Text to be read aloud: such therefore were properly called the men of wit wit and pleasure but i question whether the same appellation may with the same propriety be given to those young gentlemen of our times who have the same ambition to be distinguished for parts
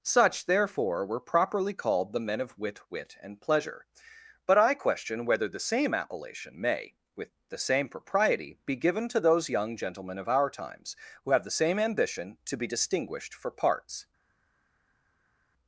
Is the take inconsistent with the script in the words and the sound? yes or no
no